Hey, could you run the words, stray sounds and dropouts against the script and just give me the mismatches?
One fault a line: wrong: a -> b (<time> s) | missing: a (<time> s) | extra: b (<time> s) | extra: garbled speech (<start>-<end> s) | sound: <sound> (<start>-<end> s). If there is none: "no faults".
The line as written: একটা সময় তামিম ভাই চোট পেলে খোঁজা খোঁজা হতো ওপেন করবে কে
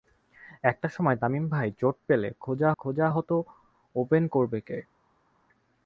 no faults